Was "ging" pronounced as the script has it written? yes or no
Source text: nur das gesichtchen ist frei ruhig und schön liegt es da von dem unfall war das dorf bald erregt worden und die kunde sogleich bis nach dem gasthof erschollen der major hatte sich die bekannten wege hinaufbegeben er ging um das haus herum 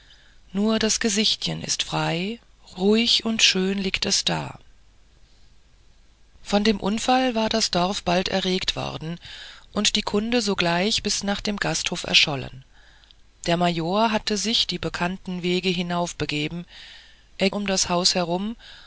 no